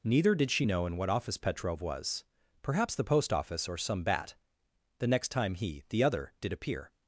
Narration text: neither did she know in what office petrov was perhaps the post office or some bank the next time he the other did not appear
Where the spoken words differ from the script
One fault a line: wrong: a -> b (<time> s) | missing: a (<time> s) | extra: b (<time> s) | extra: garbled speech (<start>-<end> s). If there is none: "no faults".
wrong: bank -> bat (4.0 s)
missing: not (6.5 s)